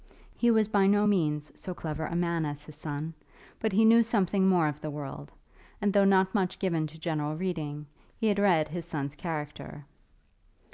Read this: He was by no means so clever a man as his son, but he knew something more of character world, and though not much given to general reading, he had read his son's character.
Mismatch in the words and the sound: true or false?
true